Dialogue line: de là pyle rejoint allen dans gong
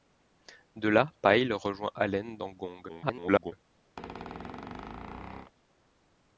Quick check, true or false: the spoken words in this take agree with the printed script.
false